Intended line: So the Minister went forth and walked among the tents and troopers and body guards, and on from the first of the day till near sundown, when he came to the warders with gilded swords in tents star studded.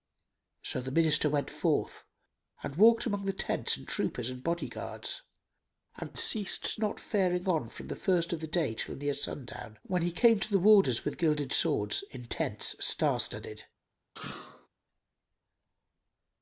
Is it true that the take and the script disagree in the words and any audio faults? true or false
true